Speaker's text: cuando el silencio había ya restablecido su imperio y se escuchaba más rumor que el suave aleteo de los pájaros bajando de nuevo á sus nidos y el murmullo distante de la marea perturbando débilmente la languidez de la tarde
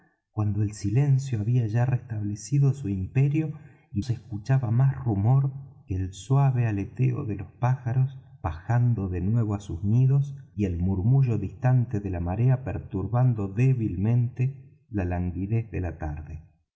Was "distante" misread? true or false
false